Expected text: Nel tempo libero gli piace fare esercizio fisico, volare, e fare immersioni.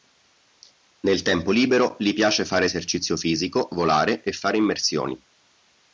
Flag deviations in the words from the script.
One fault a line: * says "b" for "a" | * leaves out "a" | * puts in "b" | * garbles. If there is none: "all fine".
all fine